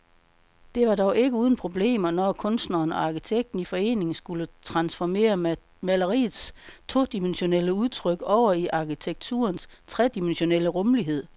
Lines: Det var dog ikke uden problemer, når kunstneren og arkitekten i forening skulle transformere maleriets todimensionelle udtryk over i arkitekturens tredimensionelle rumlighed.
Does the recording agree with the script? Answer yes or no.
yes